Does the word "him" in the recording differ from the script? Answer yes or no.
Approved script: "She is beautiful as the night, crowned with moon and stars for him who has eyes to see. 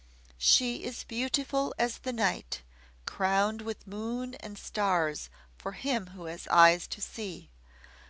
no